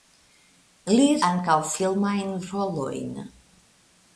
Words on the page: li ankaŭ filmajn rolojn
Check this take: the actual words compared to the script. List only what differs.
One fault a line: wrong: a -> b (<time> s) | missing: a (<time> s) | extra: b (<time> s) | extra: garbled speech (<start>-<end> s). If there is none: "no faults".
no faults